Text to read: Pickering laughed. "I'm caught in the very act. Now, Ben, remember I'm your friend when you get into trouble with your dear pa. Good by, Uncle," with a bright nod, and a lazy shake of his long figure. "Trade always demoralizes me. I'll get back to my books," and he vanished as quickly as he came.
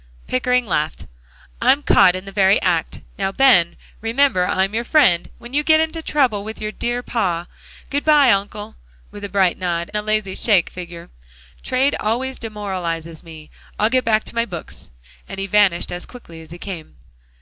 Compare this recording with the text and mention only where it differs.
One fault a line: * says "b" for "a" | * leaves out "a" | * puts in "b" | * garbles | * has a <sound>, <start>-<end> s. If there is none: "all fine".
* leaves out "and"
* leaves out "of his long"